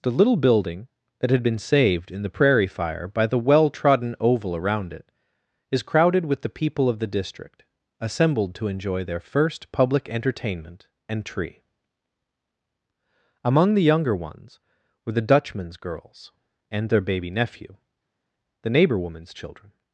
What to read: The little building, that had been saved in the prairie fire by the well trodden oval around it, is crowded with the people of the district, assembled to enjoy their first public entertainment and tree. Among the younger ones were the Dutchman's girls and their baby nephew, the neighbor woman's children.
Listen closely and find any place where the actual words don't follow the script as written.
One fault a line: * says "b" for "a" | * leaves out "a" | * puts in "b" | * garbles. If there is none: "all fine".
all fine